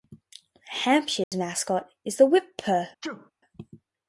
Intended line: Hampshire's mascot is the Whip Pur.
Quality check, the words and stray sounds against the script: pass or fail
fail